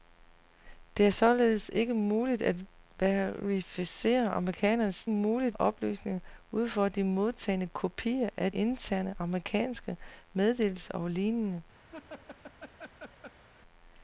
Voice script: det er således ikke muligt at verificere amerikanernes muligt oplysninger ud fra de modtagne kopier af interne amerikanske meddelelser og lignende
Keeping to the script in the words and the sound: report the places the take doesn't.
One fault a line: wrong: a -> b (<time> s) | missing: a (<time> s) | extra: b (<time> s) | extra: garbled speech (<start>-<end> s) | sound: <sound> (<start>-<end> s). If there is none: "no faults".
sound: laugh (11.9-13.4 s)